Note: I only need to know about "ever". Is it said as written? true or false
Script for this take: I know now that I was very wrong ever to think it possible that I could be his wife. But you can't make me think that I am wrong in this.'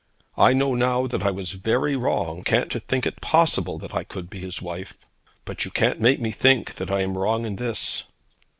false